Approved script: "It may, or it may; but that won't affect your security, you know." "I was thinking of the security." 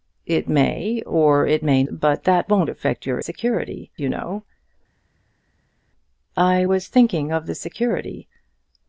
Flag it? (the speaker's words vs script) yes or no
no